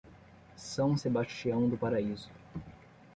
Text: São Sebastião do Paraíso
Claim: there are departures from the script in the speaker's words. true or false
false